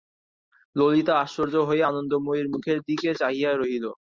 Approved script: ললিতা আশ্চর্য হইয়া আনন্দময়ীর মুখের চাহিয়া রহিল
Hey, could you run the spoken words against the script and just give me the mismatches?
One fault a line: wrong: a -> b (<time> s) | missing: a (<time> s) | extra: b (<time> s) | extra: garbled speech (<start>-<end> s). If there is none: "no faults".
extra: দিকে (2.9 s)